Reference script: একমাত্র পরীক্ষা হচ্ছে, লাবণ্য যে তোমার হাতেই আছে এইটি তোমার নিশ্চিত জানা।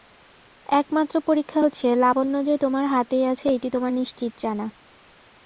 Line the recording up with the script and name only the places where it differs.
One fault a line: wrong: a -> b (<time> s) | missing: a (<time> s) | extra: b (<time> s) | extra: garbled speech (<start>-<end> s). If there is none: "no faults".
no faults